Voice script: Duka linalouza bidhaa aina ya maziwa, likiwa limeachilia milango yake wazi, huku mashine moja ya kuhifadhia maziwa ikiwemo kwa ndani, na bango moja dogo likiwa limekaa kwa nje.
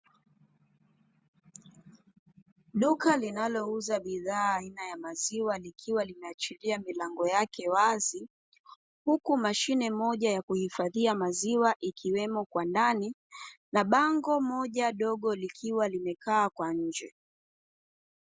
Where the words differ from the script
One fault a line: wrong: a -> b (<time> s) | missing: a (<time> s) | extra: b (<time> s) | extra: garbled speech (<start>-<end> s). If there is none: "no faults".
no faults